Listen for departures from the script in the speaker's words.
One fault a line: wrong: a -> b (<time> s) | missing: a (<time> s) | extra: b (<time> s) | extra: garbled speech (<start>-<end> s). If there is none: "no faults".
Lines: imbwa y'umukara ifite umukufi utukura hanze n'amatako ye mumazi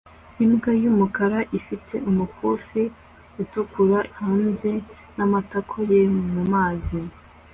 no faults